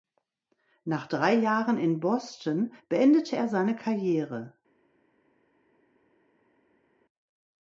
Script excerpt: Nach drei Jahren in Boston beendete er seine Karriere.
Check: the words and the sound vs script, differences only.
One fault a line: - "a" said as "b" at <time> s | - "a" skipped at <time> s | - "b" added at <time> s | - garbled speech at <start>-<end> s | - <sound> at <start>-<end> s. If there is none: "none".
none